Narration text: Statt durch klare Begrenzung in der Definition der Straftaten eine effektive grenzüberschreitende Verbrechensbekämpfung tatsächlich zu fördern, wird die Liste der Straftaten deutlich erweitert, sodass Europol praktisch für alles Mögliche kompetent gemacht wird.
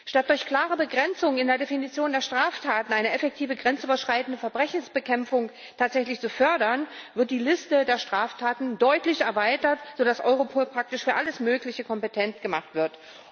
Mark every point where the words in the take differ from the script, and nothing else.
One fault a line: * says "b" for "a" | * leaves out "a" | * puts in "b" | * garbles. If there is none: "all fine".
all fine